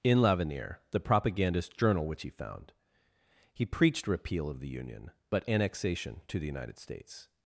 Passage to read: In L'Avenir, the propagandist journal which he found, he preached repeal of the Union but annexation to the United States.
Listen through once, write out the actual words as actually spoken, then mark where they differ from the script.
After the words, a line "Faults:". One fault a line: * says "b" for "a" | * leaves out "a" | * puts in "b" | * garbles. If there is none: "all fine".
In L'Avenir, the propagandist journal which he found, he preached repeal of the Union but annexation to the United States.
Faults:
all fine